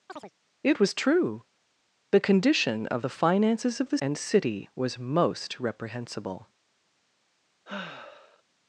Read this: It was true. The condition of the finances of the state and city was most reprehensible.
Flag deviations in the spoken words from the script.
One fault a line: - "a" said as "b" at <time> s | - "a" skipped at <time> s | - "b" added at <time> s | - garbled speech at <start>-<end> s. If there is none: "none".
- "state" skipped at 4.0 s